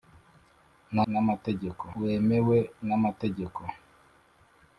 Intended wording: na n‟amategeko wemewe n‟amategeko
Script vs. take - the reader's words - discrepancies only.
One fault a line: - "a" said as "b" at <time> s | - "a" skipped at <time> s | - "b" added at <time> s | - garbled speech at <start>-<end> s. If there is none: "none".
none